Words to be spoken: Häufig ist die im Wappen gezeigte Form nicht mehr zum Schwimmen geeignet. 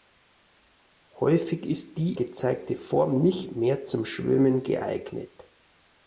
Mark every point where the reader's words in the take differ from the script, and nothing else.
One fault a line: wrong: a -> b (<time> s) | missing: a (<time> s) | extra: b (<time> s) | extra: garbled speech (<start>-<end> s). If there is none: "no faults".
missing: im Wappen (2.2 s)